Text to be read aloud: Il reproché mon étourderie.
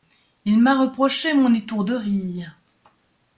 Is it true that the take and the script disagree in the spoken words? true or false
true